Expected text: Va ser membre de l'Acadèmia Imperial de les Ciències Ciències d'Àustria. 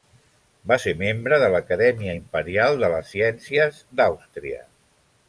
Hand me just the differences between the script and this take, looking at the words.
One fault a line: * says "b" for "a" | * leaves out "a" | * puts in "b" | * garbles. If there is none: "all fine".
* leaves out "Ciències"